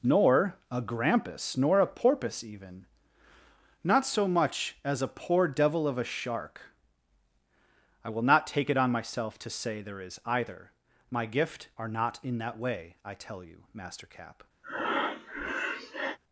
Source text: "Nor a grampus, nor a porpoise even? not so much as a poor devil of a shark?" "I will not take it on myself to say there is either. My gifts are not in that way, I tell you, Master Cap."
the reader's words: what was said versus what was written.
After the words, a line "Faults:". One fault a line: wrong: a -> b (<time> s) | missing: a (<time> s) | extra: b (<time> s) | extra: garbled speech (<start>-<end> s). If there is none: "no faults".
"Nor a grampus, nor a porpoise even? not so much as a poor devil of a shark?" "I will not take it on myself to say there is either. My gift are not in that way, I tell you, Master Cap."
Faults:
wrong: gifts -> gift (11.3 s)